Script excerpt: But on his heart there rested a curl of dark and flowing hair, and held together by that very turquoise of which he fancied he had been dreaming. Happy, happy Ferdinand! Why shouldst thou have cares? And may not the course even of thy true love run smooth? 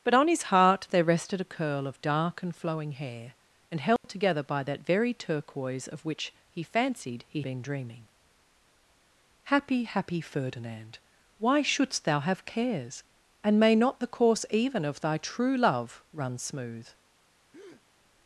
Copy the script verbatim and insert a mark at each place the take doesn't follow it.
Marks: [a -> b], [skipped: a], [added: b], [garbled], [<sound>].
But on his heart there rested a curl of dark and flowing hair, and held [dropout] together by that very turquoise of which he fancied he [skipped: had] been dreaming. Happy, happy Ferdinand! Why shouldst thou have cares? And may not the course even of thy true love run smooth? [breath]